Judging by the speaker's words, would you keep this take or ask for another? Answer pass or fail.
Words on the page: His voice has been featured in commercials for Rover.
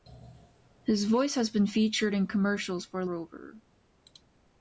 pass